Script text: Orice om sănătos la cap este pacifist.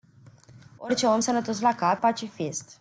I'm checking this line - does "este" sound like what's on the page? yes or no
no